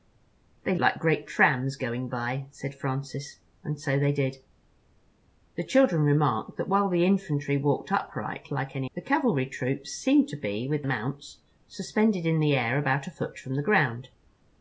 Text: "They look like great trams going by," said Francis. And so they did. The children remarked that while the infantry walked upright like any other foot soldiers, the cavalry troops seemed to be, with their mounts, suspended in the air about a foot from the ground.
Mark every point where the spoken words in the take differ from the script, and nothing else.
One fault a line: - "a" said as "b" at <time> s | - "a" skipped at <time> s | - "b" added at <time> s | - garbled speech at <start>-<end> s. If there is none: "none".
- "look" skipped at 0.8 s
- "other foot soldiers" skipped at 8.9 s
- "their" skipped at 10.8 s